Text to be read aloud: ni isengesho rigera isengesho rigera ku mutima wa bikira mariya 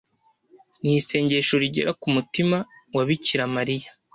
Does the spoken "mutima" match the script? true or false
true